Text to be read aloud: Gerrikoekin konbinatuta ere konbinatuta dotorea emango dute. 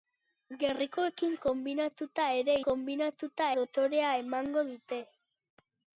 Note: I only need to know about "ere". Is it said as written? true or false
true